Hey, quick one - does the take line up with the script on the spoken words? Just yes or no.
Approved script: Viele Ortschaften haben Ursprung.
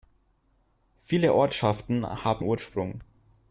yes